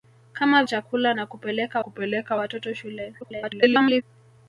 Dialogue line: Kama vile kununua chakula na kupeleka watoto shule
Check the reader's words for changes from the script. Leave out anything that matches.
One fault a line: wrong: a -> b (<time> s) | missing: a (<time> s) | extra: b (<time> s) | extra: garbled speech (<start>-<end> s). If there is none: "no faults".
missing: vile kununua (0.6 s)
extra: kupeleka (1.8 s)
extra: garbled speech (3.2-4.0 s)